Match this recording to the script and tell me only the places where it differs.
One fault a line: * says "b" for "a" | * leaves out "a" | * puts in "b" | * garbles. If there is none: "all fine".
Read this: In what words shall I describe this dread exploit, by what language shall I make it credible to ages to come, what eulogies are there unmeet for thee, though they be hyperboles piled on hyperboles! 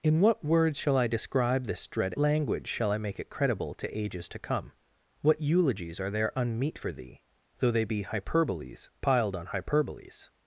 * leaves out "exploit by what"